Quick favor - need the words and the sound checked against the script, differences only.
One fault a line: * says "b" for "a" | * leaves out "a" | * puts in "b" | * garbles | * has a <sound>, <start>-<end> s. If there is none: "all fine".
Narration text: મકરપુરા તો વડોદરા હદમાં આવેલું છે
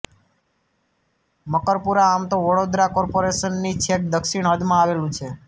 * puts in "આમ"
* puts in "કોર્પોરેશનની છેક દક્ષિણ"